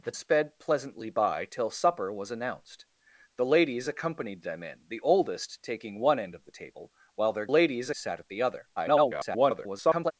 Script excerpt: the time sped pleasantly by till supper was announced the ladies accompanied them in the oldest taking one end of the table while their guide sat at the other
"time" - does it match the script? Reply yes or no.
no